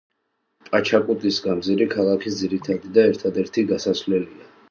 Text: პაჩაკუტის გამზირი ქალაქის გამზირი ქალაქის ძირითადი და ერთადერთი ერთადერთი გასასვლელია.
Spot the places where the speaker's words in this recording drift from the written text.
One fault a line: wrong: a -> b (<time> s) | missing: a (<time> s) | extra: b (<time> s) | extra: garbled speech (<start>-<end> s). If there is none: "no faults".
missing: გამზირი ქალაქის (2.4 s)
missing: ერთადერთი (3.7 s)